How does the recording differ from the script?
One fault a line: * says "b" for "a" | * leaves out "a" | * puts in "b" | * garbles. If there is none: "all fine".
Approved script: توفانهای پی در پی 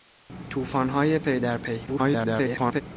* garbles